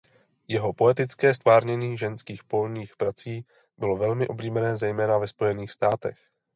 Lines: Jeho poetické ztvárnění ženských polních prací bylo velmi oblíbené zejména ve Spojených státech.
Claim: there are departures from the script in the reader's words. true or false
false